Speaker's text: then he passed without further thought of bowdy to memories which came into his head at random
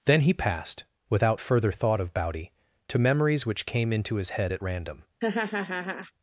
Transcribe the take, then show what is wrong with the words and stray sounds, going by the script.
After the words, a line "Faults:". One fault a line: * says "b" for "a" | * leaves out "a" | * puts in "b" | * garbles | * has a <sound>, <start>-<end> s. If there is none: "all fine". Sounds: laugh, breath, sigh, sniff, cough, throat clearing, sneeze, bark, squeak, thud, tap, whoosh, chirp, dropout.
then he passed without further thought of bowdy to memories which came into his head at random
Faults:
* has a laugh, 5.2-6.1 s